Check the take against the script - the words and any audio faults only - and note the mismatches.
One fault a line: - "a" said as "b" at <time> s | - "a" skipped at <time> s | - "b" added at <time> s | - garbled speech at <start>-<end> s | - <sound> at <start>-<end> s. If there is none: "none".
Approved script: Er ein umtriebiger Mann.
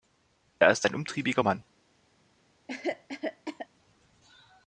- "ist" added at 0.7 s
- cough at 2.7-3.7 s